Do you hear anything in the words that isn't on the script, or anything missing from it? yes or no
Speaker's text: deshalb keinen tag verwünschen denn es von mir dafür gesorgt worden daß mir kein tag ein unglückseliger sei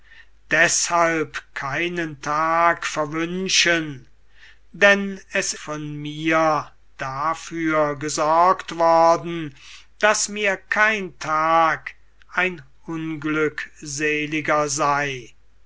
no